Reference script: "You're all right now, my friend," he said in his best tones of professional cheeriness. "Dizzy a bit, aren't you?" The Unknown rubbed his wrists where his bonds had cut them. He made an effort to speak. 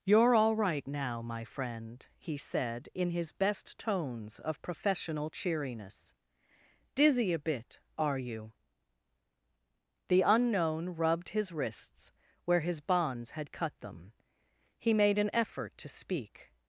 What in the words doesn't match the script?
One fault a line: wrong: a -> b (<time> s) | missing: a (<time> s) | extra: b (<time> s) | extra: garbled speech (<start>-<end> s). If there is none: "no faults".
wrong: aren't -> are (8.0 s)